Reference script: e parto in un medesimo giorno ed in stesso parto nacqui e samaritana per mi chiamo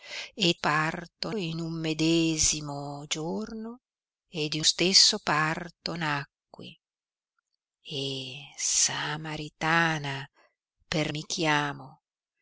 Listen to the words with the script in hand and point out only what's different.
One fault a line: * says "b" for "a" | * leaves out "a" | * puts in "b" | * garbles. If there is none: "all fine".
all fine